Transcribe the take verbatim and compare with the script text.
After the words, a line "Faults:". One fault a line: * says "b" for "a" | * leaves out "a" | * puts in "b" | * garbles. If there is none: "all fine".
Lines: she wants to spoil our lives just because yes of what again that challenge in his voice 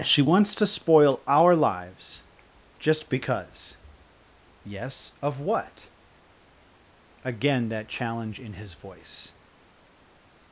she wants to spoil our lives just because yes of what again that challenge in his voice
Faults:
all fine